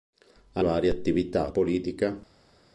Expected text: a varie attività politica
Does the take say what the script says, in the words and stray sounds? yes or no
yes